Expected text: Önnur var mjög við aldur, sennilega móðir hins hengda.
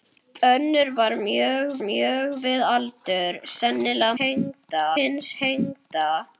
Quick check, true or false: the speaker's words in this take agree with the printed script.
false